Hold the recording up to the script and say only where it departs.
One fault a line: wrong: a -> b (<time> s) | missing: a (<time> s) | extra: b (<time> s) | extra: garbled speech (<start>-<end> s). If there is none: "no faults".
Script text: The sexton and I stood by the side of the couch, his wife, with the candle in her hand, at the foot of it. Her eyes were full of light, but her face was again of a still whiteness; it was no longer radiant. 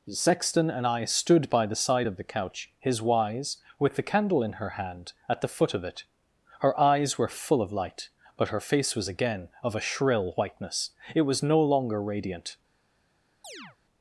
wrong: wife -> wise (3.0 s)
wrong: still -> shrill (9.8 s)